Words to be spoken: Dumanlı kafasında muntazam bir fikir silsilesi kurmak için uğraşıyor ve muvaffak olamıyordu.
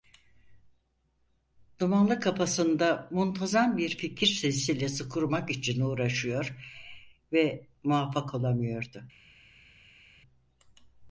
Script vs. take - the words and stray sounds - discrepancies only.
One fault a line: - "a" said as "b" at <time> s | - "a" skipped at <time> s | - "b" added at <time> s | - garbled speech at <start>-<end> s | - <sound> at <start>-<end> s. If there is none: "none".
none